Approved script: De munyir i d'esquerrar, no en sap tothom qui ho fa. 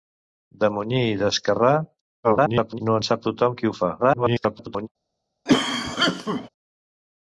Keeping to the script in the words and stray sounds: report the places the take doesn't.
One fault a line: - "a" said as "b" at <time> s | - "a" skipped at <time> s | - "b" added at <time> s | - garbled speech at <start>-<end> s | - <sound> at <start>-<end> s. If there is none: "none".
- garbled speech at 2.2-2.8 s
- garbled speech at 4.0-4.9 s
- cough at 5.5-6.5 s